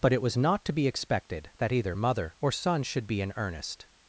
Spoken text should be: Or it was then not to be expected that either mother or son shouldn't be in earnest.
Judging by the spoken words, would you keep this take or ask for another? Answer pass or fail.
fail